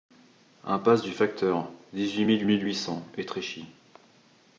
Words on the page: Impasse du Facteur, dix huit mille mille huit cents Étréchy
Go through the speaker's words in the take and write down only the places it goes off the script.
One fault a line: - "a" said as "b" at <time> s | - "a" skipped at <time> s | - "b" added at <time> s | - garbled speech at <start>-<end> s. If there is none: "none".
none